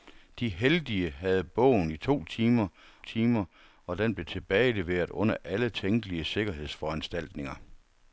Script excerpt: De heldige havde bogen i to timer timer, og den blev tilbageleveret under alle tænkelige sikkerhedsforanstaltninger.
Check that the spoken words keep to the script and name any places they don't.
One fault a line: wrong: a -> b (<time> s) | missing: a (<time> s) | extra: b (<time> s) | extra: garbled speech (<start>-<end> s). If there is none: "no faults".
no faults